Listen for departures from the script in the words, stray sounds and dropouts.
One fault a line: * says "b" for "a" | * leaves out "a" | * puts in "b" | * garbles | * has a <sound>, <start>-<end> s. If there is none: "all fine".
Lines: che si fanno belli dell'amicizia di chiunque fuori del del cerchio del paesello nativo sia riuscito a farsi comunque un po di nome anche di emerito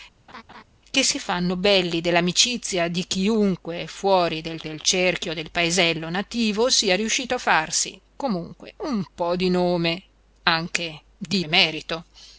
* has a laugh, 0.3-0.6 s